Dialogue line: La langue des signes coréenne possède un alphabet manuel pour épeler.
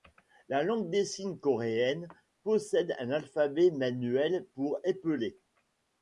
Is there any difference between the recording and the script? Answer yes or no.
no